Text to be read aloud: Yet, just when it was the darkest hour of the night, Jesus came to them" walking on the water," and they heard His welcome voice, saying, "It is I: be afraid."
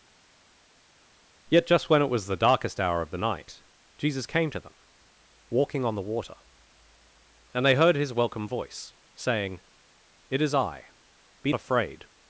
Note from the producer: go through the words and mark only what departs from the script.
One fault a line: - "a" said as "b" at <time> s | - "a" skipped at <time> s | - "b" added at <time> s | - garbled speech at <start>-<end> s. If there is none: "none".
none